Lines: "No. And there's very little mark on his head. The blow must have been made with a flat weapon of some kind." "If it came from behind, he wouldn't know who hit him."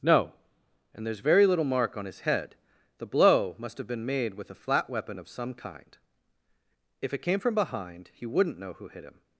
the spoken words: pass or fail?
pass